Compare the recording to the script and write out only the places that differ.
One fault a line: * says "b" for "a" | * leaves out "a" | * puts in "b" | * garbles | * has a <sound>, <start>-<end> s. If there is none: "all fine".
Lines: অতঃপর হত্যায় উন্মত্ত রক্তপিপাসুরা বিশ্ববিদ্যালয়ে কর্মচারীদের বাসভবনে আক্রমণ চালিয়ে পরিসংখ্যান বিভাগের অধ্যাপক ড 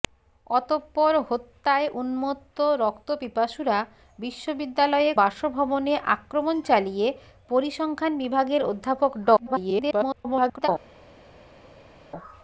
* leaves out "কর্মচারীদের"
* garbles